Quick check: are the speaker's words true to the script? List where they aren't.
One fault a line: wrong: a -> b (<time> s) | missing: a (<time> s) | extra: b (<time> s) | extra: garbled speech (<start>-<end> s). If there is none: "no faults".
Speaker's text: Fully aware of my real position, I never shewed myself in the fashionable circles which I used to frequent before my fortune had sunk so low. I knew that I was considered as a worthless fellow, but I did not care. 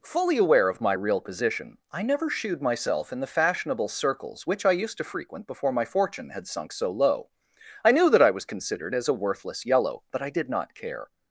wrong: fellow -> yellow (9.6 s)